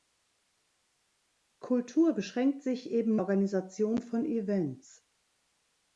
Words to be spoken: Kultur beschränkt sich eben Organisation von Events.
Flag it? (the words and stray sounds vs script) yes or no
no